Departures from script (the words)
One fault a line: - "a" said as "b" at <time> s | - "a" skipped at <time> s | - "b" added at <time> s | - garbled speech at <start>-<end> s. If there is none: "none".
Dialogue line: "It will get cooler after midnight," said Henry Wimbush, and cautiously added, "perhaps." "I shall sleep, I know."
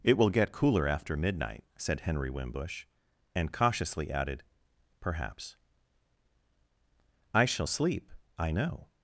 none